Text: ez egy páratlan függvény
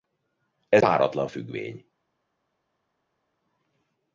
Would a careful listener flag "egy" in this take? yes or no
yes